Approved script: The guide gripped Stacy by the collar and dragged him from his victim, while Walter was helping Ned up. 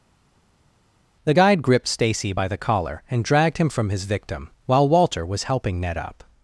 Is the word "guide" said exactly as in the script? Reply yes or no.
yes